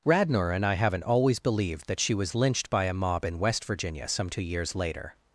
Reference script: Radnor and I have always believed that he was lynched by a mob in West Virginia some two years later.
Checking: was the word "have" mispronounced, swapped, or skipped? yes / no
yes